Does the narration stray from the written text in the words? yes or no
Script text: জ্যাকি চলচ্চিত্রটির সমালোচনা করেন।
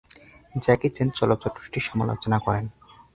yes